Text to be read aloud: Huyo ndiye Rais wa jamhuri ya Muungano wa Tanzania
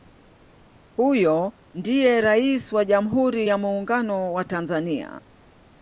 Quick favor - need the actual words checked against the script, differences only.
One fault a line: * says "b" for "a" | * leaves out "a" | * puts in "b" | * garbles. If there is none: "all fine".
all fine